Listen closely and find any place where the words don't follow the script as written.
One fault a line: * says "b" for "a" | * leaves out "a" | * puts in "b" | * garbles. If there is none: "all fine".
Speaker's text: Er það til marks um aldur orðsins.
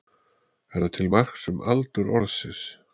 all fine